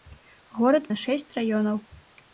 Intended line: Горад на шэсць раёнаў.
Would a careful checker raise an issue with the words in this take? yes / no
no